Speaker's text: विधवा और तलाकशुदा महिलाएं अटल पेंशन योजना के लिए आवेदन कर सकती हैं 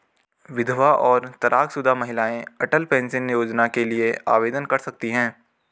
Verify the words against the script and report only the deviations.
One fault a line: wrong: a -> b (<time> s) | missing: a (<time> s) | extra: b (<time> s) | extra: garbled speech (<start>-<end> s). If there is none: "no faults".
no faults